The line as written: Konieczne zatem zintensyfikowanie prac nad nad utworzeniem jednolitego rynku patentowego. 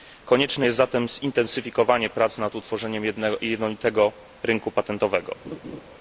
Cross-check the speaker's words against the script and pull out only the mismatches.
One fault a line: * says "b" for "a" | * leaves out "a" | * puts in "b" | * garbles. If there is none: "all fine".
* puts in "jest"
* leaves out "nad"